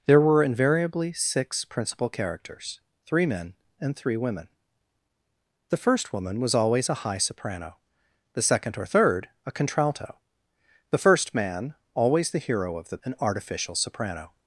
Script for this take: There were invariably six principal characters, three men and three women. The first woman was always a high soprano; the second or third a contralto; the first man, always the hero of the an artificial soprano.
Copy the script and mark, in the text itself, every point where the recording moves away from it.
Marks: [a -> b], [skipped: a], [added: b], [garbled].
There were invariably six principal characters, three men and three women. The first woman was always a high soprano; the second or third a contralto; the first man, always the hero of the an artificial soprano.